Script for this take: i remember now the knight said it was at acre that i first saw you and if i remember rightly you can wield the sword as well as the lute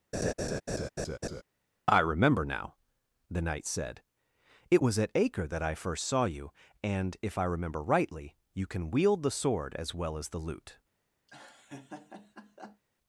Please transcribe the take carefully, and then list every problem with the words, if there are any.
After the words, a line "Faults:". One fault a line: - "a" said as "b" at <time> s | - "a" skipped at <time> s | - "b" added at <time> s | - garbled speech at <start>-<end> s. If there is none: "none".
i remember now the knight said it was at acre that i first saw you and if i remember rightly you can wield the sword as well as the lute
Faults:
none